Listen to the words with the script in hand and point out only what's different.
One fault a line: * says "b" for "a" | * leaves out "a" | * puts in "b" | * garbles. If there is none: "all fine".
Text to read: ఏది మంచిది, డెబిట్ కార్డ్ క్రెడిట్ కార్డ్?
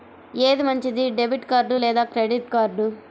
* puts in "లేదా"